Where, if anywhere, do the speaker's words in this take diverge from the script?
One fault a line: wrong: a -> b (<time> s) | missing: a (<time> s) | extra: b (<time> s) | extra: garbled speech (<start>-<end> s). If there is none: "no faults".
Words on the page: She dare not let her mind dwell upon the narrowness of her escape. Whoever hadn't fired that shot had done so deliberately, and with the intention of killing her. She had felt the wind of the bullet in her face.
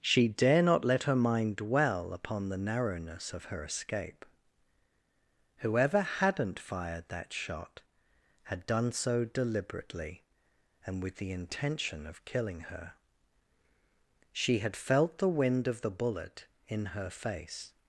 no faults